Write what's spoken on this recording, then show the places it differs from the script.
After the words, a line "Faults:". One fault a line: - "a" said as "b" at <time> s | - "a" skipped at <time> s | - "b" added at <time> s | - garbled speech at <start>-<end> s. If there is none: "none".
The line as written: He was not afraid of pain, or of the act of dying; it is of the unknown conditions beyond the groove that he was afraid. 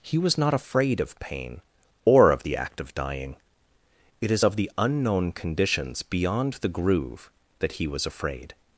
He was not afraid of pain, or of the act of dying; it is of the unknown conditions beyond the groove that he was afraid.
Faults:
none